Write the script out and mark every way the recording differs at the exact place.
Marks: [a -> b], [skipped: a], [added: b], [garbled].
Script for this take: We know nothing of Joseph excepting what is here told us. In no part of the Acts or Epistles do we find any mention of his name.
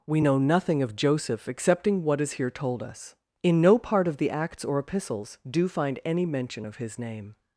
We know nothing of Joseph excepting what is here told us. In no part of the Acts or Epistles do [skipped: we] find any mention of his name.